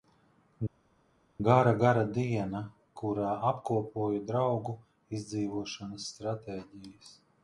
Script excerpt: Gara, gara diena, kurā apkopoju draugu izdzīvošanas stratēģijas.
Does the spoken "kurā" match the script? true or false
true